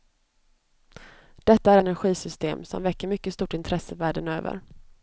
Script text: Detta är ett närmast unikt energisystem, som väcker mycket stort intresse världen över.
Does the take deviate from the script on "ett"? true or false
true